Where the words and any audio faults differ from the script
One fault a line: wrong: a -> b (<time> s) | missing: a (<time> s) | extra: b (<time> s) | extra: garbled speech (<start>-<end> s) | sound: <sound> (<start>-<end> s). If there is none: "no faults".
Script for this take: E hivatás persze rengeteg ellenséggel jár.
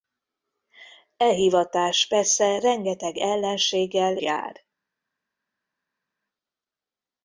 no faults